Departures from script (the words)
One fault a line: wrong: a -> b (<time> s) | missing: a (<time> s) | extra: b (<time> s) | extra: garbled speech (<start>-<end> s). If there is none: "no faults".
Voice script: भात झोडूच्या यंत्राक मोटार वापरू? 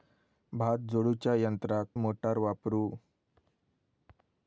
no faults